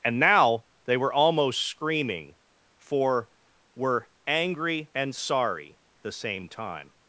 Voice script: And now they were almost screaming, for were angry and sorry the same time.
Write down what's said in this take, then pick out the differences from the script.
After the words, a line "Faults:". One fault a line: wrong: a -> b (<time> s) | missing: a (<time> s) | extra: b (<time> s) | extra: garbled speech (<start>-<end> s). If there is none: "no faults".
And now they were almost screaming, for were angry and sorry the same time.
Faults:
no faults